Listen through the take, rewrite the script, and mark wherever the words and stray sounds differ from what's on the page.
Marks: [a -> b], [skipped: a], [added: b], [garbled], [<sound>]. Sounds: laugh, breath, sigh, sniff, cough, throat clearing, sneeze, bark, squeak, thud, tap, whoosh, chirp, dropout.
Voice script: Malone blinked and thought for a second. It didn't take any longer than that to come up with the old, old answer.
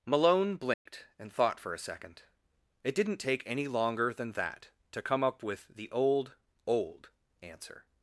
Malone blinked [dropout] and thought for a second. It didn't take any longer than that to come up with the old, old answer.